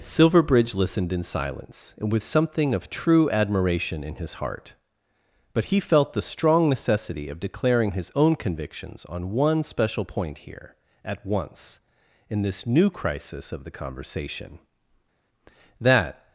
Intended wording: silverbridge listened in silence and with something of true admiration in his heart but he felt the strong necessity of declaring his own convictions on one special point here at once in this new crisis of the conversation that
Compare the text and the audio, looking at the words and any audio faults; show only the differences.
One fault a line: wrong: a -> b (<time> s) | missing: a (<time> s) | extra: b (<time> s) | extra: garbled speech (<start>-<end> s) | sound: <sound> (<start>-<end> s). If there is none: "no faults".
no faults